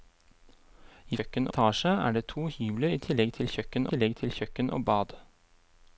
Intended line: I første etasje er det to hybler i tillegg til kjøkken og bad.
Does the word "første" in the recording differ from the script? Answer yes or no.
yes